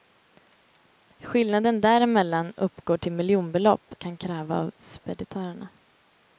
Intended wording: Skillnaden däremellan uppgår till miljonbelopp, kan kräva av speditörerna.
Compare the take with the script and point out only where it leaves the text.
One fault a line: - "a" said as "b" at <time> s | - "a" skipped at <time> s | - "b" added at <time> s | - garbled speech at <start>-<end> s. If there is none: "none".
none